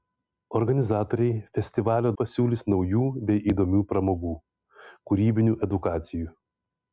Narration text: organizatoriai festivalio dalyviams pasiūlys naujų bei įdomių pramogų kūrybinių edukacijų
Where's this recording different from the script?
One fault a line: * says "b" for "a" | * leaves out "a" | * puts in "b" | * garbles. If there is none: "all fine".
* leaves out "dalyviams"